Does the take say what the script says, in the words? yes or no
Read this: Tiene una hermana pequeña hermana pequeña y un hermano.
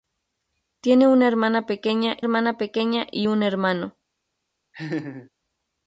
yes